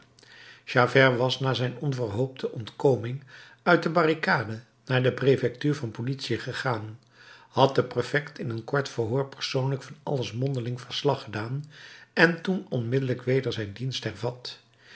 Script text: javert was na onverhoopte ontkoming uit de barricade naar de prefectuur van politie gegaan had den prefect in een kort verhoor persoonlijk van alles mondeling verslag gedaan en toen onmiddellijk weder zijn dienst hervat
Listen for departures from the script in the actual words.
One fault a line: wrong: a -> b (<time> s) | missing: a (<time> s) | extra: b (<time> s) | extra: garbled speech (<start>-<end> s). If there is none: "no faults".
extra: zijn (1.5 s)